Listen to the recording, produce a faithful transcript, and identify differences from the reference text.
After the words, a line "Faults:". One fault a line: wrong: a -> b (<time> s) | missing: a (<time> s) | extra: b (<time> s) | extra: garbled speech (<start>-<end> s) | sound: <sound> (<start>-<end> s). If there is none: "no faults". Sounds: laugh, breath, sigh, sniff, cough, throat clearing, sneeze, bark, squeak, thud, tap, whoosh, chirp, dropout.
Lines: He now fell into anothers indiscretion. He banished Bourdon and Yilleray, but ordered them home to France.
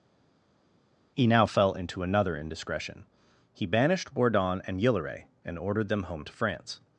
He now fell into another indiscretion. He banished Bourdon and Yilleray, and ordered them home to France.
Faults:
wrong: anothers -> another (2.0 s)
wrong: but -> and (5.4 s)